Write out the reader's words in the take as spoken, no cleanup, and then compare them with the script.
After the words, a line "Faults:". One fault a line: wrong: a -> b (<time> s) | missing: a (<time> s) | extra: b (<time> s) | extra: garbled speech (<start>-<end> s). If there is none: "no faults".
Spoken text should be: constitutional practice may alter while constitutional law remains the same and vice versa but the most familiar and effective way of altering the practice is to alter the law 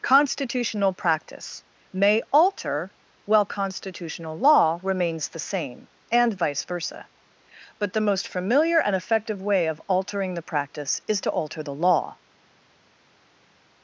constitutional practice may alter while constitutional law remains the same and vice versa but the most familiar and effective way of altering the practice is to alter the law
Faults:
no faults